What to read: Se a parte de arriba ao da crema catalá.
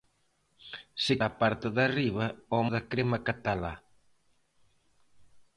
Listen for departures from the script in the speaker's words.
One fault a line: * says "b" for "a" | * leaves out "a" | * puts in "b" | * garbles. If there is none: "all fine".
all fine